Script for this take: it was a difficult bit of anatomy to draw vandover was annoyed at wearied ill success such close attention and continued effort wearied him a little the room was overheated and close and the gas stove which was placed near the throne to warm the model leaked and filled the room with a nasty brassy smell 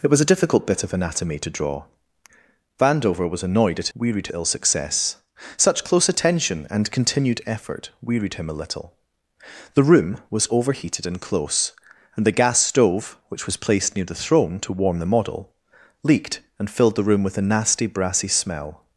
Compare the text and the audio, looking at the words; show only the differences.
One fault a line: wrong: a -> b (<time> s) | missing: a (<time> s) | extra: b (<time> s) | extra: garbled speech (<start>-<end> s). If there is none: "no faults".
no faults